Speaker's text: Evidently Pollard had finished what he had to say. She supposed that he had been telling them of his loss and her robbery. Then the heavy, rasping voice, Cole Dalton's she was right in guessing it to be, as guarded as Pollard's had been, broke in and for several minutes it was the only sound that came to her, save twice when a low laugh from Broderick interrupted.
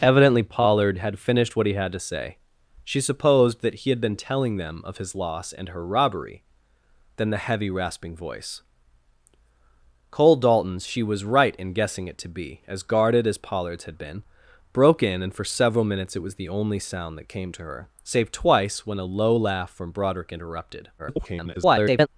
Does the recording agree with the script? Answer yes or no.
no